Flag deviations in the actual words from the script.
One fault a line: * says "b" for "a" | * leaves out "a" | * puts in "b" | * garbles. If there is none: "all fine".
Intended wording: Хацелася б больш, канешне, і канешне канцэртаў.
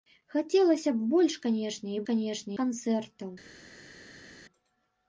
all fine